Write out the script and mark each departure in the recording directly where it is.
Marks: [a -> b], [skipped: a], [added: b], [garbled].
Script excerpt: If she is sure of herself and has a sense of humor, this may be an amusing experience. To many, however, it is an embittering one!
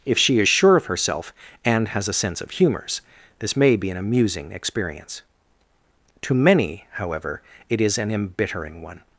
If she is sure of herself and has a sense of [humor, -> humors] this may be an amusing experience. To many, however, it is an embittering one!